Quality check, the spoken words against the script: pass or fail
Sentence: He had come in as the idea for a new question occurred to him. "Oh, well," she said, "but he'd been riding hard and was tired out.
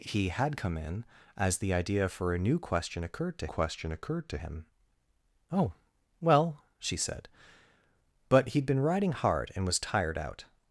fail